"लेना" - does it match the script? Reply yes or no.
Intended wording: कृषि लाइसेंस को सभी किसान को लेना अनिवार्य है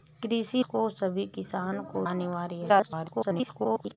no